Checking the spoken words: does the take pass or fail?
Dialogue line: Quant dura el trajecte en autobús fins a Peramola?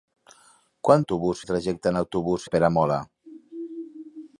fail